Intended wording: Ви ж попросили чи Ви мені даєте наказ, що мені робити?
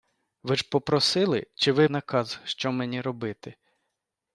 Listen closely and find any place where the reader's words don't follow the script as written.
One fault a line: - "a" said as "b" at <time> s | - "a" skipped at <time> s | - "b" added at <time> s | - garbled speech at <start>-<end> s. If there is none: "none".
- "мені даєте" skipped at 1.9 s